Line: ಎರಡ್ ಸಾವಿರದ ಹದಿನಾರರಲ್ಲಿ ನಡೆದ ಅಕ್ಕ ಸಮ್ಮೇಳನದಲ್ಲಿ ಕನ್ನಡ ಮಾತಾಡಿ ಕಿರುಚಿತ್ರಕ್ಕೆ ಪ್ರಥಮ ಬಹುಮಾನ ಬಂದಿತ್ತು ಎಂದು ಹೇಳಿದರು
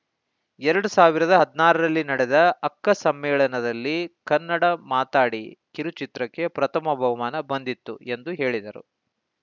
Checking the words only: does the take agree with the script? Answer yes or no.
yes